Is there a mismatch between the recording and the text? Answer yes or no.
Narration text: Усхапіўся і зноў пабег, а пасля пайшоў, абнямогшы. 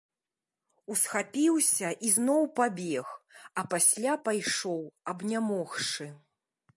no